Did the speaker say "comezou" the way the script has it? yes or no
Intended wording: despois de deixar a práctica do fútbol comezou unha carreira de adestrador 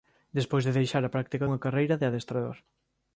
no